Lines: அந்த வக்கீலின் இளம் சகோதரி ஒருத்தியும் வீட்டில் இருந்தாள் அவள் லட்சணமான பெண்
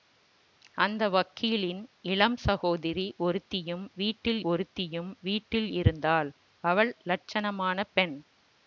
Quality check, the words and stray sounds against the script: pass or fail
fail